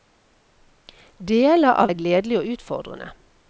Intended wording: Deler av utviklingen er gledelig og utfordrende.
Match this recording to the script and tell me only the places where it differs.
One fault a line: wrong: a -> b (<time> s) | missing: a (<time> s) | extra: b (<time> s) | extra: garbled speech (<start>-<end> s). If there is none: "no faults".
missing: utviklingen (1.9 s)